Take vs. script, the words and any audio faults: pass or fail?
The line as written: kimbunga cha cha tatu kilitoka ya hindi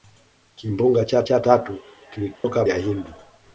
fail